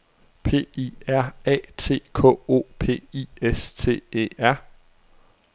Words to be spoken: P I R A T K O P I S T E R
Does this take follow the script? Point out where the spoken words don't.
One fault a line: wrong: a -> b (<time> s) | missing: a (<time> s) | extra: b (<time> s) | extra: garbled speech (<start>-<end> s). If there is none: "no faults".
no faults